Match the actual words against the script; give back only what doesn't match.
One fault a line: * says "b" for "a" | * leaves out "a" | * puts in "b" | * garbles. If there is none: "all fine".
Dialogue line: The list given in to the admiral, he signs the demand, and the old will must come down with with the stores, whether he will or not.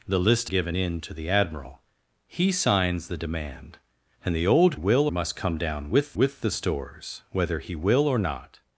all fine